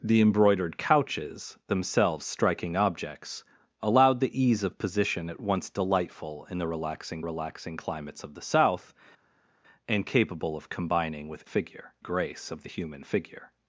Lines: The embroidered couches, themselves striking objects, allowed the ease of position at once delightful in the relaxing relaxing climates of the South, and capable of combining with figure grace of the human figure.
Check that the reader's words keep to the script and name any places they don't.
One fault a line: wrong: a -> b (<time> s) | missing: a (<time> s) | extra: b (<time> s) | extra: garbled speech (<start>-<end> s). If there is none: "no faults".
no faults